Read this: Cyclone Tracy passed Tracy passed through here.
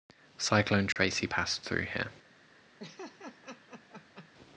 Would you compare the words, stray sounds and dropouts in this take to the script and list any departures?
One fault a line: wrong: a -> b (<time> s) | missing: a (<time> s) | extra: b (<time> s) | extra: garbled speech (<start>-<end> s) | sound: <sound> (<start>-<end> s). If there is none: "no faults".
sound: dropout (0.9-1.0 s)
missing: Tracy passed (1.6 s)
sound: laugh (2.8-4.3 s)